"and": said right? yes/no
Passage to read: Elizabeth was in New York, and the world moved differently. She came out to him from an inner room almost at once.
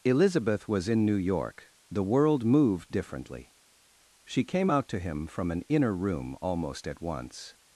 no